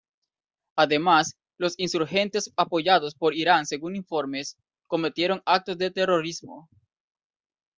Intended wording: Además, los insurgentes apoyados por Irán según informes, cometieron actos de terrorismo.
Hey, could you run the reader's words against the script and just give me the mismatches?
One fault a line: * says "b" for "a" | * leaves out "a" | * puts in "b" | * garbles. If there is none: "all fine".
all fine